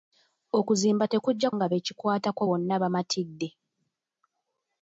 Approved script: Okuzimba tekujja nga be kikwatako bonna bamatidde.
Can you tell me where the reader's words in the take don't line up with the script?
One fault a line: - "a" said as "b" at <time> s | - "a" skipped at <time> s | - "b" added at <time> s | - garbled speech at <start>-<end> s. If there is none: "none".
none